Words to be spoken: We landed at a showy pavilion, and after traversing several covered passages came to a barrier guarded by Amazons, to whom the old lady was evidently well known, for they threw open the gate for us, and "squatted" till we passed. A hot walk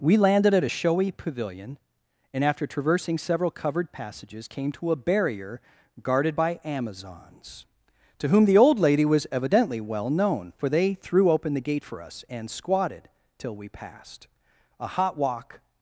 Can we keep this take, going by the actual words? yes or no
yes